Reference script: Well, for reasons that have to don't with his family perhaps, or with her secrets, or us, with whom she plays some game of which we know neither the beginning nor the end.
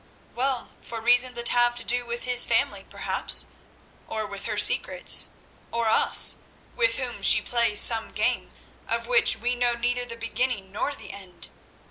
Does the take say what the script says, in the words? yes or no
no